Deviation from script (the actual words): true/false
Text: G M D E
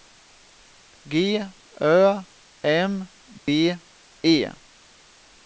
true